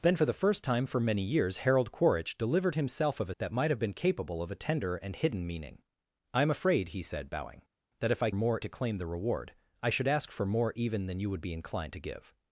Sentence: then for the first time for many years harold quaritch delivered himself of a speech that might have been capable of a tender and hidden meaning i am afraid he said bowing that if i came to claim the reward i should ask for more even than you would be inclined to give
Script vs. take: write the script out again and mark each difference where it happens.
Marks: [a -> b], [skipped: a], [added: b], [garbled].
then for the first time for many years harold quaritch delivered himself of a [skipped: speech] that might have been capable of a tender and hidden meaning i am afraid he said bowing that if i [came -> more] to claim the reward i should ask for more even than you would be inclined to give